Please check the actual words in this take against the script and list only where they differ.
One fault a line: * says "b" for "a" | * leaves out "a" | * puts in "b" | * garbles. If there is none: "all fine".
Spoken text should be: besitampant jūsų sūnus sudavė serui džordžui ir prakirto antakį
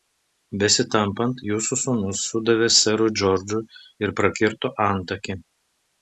all fine